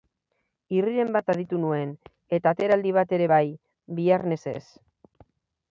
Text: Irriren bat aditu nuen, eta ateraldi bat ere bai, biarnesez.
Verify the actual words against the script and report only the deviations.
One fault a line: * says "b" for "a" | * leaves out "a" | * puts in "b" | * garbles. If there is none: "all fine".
all fine